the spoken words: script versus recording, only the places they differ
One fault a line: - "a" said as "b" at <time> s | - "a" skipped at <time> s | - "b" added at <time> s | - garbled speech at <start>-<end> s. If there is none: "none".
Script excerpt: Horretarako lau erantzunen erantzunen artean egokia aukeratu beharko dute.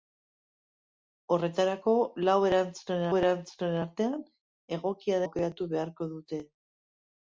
none